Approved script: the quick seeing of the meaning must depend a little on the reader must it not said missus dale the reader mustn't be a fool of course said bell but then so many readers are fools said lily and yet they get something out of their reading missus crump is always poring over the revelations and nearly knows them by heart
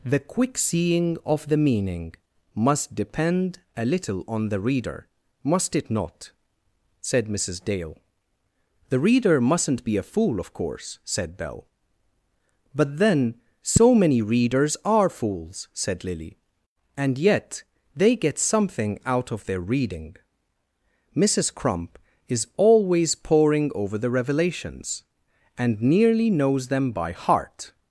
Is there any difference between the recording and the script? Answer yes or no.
no